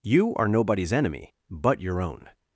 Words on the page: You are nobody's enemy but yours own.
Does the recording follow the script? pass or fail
fail